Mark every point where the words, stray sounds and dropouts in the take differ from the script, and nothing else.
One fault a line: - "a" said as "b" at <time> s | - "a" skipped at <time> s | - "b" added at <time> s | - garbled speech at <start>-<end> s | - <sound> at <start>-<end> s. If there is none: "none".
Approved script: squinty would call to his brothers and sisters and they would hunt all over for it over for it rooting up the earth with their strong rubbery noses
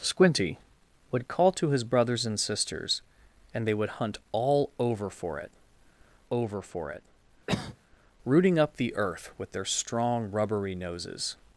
- cough at 7.5-7.8 s